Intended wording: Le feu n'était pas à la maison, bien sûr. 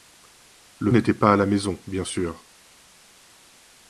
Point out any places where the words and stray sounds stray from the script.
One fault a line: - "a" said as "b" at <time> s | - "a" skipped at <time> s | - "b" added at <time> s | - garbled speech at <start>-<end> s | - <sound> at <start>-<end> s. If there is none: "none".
- "feu" skipped at 0.9 s